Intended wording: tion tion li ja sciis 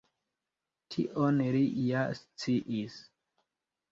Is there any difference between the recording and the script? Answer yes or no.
yes